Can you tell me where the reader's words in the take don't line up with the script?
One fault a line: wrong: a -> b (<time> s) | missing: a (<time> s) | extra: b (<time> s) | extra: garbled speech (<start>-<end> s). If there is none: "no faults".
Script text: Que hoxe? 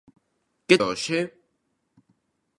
no faults